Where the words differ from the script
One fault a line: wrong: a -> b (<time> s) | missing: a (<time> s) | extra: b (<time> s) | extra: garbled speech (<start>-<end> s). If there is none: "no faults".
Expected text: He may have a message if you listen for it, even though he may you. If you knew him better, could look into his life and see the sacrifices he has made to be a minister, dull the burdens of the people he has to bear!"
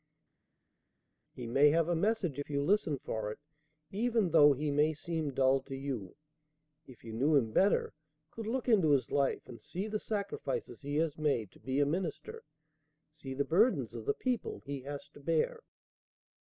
extra: seem dull to (4.9 s)
wrong: dull -> see (13.1 s)